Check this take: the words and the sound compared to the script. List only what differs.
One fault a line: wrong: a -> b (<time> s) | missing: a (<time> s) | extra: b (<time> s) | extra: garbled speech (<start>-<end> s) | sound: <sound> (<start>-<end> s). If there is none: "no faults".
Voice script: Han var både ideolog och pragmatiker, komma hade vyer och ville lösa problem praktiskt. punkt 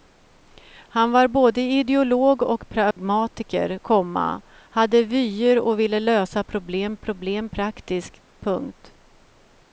sound: dropout (2.9-3.0 s)
extra: problem (7.0 s)